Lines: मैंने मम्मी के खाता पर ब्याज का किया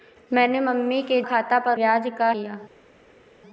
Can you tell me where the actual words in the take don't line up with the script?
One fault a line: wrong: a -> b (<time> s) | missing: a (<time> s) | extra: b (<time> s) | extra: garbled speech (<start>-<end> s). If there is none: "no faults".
no faults